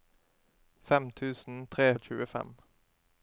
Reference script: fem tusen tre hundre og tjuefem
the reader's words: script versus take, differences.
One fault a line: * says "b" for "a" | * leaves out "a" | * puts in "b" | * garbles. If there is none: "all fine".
* leaves out "hundre"